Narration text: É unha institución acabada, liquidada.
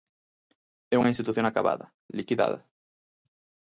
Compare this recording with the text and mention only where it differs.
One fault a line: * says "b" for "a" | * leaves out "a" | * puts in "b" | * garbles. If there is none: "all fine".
all fine